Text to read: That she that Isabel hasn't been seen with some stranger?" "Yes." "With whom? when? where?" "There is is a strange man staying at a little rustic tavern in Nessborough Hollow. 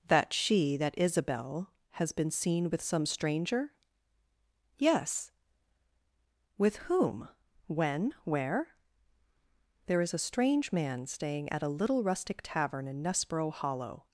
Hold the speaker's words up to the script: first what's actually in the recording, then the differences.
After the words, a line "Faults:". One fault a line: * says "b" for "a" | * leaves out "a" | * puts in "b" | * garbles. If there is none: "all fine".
That she that Isabel has been seen with some stranger?" "Yes." "With whom? when? where?" "There is a strange man staying at a little rustic tavern in Nessborough Hollow.
Faults:
* says "has" for "hasn't"
* leaves out "is"